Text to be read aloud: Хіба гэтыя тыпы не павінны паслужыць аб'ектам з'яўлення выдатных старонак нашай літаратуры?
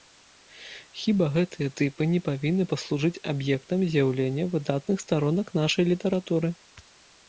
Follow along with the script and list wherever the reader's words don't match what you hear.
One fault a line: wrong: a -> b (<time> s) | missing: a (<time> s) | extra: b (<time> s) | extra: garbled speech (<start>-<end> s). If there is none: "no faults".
no faults